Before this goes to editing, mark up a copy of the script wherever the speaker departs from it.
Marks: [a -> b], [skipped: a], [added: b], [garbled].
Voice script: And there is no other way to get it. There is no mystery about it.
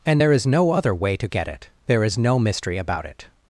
And there is no other way to get it. There is no mystery about it.